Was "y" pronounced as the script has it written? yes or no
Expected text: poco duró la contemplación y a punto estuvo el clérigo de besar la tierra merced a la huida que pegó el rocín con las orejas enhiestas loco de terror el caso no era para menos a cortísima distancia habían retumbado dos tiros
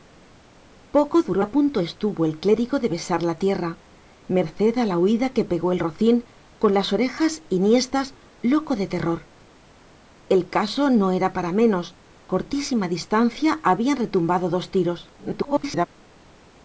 no